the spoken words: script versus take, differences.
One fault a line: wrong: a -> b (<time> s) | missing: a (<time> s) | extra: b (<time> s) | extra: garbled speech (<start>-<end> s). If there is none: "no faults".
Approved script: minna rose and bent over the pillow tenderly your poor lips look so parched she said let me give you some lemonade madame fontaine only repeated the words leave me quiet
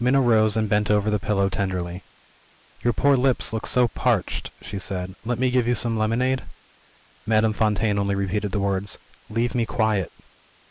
no faults